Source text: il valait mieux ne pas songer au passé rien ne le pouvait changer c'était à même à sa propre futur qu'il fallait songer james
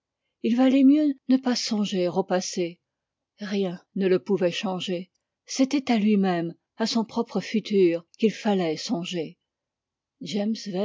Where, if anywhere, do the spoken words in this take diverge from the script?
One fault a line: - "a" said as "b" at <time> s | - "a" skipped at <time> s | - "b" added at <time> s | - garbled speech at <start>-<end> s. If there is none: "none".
- "lui" added at 6.0 s
- "sa" said as "son" at 6.9 s